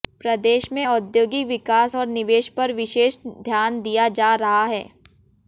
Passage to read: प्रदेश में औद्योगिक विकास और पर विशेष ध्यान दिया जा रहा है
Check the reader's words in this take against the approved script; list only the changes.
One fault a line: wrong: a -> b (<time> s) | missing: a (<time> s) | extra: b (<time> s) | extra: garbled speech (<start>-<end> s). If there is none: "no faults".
extra: निवेश (2.1 s)